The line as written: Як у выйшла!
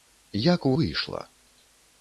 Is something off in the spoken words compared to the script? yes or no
no